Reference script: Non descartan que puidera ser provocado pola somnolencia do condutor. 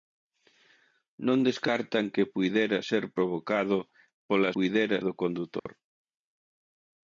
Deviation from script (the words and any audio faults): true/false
true